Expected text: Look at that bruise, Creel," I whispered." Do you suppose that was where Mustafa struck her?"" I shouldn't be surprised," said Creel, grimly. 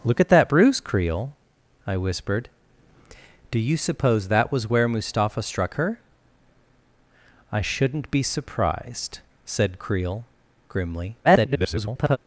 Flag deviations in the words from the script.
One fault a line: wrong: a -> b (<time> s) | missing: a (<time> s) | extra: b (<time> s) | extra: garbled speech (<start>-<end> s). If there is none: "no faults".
extra: garbled speech (11.2-12.2 s)